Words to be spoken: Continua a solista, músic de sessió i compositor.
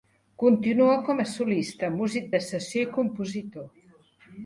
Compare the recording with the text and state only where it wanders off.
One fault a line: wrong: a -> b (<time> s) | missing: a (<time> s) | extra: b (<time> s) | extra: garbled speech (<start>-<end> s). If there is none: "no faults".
extra: com (1.1 s)